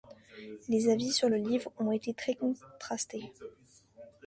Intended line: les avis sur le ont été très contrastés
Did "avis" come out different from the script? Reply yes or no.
no